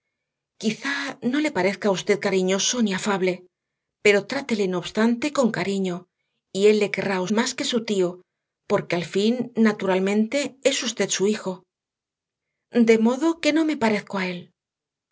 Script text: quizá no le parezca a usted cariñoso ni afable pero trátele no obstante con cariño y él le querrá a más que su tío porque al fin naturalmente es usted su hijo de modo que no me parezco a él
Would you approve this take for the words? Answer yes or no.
yes